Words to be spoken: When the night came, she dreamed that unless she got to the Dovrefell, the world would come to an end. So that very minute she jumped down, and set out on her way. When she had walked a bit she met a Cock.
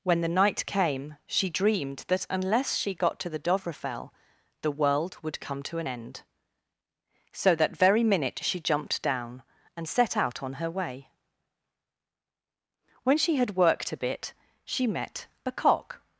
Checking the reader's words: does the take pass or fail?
fail